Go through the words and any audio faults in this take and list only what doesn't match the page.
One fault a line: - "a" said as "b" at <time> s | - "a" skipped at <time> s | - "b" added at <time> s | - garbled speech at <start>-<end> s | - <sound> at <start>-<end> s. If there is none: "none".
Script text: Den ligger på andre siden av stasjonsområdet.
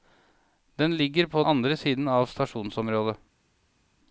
none